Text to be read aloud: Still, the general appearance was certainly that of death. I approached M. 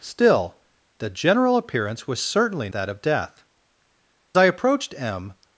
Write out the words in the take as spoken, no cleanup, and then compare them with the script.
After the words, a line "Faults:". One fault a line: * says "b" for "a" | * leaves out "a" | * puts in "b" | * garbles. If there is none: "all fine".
Still, the general appearance was certainly that of death. I approached M.
Faults:
all fine